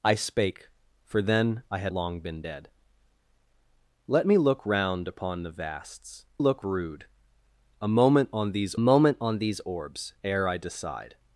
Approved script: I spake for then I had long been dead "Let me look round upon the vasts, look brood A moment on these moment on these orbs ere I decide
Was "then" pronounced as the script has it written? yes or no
yes